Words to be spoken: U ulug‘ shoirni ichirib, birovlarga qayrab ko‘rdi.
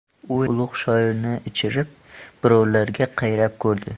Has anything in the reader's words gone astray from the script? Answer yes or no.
no